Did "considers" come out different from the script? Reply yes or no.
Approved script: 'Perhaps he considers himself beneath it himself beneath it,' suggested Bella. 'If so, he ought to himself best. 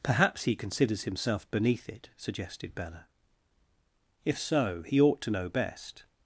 no